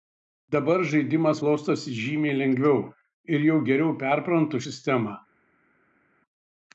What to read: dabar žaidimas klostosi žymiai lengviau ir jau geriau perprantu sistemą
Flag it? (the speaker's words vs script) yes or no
no